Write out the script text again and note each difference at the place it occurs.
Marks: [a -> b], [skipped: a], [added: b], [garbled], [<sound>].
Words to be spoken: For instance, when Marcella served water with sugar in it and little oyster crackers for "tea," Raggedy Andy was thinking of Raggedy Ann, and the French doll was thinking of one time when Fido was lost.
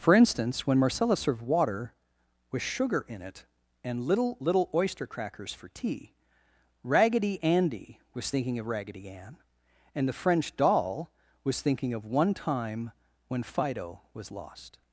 For instance, when Marcella served water with sugar in it and little [added: little] oyster crackers for "tea," Raggedy Andy was thinking of Raggedy Ann, and the French doll was thinking of one time when Fido was lost.